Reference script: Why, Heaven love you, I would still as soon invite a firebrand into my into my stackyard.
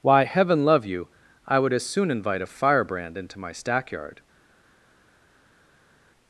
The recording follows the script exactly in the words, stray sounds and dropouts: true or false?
false